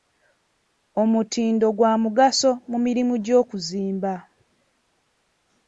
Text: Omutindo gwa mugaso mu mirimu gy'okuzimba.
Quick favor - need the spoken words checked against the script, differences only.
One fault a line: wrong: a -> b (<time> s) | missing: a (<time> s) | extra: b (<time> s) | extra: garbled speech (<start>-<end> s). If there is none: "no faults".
no faults